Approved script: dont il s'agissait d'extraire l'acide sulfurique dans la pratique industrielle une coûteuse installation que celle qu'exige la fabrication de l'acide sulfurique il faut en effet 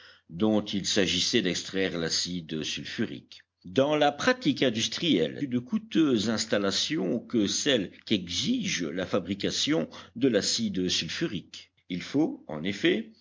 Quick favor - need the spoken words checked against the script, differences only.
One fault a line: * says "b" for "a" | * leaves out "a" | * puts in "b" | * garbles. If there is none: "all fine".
all fine